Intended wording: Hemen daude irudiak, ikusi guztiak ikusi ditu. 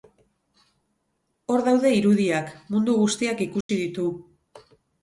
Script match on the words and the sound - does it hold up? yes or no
no